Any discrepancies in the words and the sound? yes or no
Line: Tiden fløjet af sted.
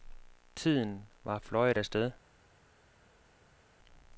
yes